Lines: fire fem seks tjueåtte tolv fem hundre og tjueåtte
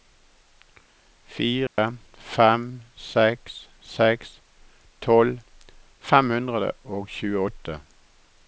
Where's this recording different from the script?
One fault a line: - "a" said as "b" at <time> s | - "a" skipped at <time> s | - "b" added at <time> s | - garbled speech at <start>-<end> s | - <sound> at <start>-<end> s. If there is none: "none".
- dropout at 1.7-1.8 s
- "tjueåtte" said as "seks" at 3.9 s